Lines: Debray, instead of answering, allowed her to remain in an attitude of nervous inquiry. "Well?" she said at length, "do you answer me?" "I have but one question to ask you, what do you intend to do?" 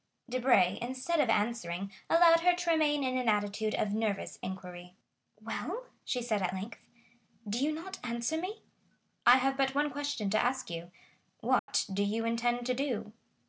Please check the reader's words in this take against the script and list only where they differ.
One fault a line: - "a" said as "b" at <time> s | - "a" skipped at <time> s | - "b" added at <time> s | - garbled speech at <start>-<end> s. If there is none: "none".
- "not" added at 7.7 s